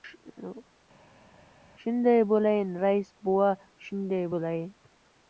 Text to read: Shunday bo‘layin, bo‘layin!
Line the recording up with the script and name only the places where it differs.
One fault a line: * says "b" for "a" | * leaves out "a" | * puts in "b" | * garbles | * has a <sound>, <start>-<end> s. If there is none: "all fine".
* puts in "rais bova shunday"